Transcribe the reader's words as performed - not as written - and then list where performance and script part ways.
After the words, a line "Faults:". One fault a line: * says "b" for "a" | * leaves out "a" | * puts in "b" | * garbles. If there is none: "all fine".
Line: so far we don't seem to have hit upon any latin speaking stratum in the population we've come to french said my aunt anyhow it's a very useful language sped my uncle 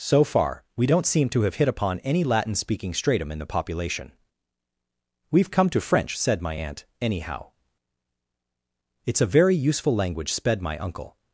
so far we don't seem to have hit upon any latin speaking stratum in the population we've come to french said my aunt anyhow it's a very useful language sped my uncle
Faults:
all fine